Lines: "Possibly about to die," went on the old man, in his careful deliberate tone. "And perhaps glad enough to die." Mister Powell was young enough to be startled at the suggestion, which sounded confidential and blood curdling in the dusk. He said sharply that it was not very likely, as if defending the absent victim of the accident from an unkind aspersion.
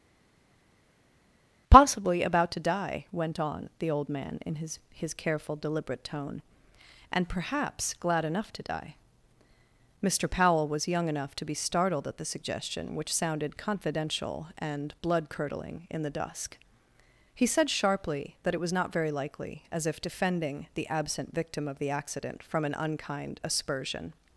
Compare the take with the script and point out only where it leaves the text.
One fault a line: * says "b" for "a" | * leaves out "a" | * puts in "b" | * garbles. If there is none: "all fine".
* puts in "his"